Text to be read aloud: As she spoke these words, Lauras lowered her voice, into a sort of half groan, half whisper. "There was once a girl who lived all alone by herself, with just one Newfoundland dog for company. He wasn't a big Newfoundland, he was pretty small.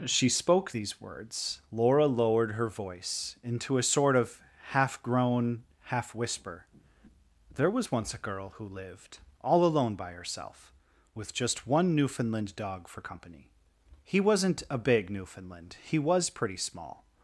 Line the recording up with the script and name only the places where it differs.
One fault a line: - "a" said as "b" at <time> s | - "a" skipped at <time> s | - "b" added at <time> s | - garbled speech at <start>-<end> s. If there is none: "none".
- "Lauras" said as "Laura" at 1.7 s